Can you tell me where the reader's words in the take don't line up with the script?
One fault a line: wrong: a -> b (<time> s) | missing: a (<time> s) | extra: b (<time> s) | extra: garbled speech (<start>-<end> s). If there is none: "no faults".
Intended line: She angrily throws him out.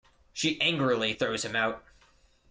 no faults